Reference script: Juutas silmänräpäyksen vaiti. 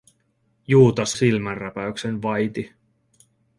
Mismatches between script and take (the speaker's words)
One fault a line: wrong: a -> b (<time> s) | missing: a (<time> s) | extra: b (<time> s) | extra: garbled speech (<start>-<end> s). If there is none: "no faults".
no faults